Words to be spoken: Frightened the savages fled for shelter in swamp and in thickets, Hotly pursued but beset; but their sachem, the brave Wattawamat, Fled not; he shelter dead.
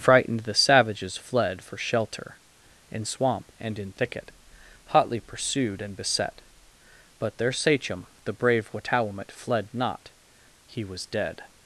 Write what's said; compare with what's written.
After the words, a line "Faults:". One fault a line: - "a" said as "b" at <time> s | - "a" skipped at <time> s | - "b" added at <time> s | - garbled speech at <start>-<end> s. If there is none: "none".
Frightened the savages fled for shelter in swamp and in thicket, Hotly pursued and beset; but their sachem, the brave Wattawamat, Fled not; he was dead.
Faults:
- "thickets" said as "thicket" at 3.9 s
- "but" said as "and" at 5.8 s
- "shelter" said as "was" at 10.8 s